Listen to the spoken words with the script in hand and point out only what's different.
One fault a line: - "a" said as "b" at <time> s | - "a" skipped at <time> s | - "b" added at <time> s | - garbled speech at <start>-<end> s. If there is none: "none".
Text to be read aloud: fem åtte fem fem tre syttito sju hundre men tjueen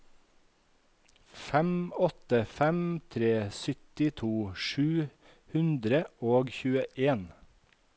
- "fem" skipped at 2.8 s
- "men" said as "og" at 6.3 s